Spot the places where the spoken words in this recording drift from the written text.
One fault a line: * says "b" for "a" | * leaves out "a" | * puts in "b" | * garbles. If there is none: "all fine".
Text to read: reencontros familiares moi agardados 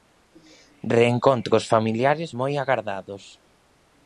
all fine